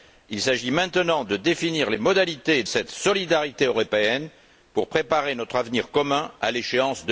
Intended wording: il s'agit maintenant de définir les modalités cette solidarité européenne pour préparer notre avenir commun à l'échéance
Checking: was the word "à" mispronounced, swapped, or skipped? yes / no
no